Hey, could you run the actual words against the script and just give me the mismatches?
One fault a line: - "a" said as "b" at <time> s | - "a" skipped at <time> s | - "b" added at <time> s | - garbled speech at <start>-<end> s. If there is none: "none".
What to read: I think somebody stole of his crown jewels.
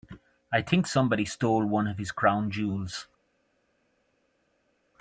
- "one" added at 1.6 s